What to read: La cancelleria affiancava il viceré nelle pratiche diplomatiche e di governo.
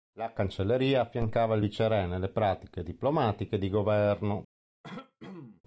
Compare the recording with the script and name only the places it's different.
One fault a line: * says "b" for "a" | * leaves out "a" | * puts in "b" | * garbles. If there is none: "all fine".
all fine